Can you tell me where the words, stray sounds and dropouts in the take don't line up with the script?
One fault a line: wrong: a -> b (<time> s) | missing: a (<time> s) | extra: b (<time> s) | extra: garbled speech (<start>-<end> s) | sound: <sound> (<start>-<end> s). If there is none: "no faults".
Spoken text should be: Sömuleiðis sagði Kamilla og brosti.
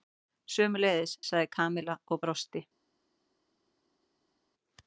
no faults